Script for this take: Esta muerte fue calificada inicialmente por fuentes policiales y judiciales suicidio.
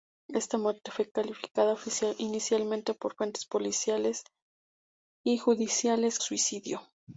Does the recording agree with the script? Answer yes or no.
yes